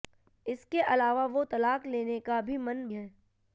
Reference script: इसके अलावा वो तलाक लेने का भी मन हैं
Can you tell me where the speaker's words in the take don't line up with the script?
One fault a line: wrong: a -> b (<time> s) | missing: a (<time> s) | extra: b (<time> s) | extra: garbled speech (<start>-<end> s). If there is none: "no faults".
no faults